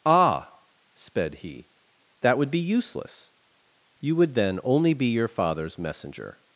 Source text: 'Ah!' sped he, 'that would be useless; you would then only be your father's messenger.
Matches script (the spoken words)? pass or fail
pass